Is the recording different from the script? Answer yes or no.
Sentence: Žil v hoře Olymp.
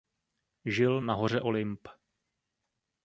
yes